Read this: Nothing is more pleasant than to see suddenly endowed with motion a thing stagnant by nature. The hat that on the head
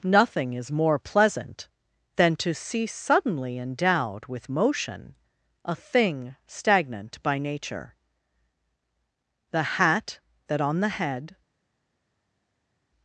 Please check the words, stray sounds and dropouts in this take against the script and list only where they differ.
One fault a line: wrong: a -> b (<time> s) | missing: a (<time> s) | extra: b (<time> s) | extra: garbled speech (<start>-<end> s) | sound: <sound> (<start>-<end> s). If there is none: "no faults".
no faults